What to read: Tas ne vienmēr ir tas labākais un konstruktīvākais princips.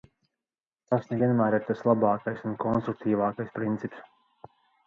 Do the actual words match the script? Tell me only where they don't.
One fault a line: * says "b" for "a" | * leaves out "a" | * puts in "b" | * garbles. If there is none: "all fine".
all fine